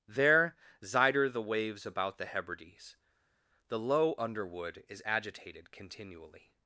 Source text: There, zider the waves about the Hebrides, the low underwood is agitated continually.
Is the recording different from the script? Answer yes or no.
no